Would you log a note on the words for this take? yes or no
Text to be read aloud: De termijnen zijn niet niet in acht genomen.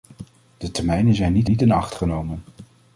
no